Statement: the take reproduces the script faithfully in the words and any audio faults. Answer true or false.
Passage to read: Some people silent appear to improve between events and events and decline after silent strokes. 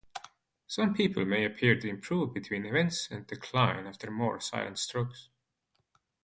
false